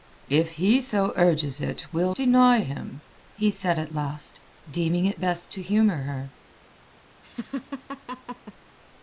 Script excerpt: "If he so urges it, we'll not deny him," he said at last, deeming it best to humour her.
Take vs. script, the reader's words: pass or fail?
fail